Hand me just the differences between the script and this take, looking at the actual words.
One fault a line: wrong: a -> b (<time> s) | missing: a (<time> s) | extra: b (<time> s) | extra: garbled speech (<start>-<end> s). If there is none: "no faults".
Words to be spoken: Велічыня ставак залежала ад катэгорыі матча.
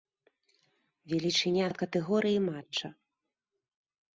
missing: ставак залежала (1.7 s)